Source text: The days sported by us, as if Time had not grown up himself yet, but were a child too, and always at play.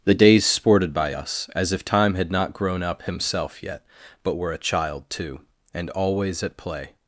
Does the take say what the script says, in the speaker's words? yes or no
yes